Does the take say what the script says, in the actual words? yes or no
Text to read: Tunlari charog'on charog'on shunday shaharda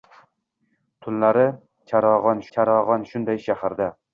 yes